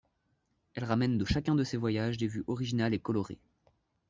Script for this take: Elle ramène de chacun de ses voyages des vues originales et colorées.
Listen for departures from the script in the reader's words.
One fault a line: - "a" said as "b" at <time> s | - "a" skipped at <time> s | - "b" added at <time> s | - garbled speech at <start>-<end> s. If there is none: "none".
none